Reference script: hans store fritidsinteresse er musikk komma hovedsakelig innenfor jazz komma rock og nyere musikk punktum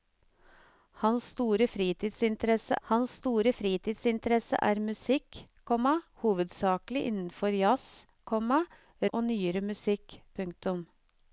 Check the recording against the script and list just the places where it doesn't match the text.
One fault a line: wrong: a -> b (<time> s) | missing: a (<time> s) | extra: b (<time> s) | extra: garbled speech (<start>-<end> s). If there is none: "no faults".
extra: hans store fritidsinteresse (2.9 s)
missing: rock (8.6 s)